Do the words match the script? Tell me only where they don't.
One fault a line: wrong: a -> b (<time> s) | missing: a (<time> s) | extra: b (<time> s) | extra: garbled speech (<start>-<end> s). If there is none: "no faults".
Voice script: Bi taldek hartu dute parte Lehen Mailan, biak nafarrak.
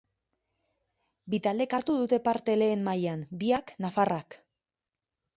no faults